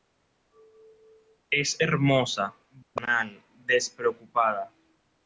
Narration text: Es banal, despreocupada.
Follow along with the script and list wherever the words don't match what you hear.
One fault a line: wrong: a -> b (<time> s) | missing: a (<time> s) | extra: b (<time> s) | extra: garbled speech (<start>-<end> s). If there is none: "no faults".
extra: hermosa (1.8 s)